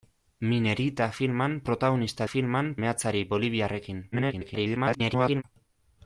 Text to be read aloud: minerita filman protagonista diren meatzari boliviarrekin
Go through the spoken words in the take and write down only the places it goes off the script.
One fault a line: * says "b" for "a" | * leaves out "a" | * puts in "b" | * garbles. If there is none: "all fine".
* says "filman" for "diren"
* garbles